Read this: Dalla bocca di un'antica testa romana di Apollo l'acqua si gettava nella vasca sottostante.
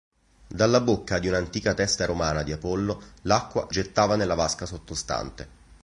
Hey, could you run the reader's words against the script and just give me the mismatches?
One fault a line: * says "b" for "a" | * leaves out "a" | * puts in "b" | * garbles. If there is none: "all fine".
* leaves out "si"